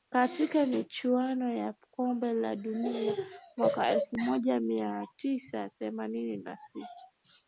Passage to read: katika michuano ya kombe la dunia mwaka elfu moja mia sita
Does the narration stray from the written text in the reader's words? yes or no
yes